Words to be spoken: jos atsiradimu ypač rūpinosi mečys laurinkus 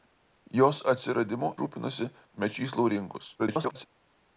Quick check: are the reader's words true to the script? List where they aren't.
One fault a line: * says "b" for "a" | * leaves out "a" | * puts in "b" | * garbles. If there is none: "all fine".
* leaves out "ypač"
* garbles